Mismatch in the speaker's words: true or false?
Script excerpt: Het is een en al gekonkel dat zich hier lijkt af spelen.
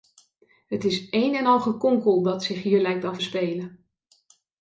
false